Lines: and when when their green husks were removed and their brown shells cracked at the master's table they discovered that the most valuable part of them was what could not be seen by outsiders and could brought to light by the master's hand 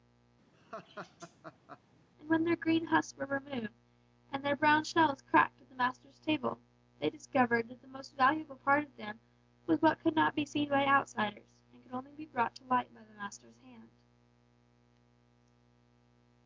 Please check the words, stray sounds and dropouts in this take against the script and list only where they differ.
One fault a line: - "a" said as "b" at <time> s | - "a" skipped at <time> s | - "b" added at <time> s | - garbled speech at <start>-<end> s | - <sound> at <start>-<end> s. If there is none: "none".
- laugh at 0.5-1.8 s
- "when" skipped at 2.5 s
- "only be" added at 11.9 s